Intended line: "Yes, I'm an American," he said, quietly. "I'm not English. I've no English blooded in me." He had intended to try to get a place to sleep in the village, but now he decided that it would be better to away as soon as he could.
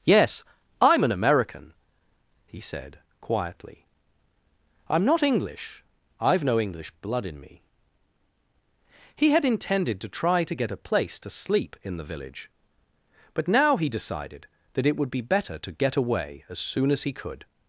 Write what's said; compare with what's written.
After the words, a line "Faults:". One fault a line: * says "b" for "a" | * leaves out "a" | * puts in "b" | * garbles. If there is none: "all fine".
"Yes, I'm an American," he said, quietly. "I'm not English. I've no English blood in me." He had intended to try to get a place to sleep in the village, but now he decided that it would be better to get away as soon as he could.
Faults:
* says "blood" for "blooded"
* puts in "get"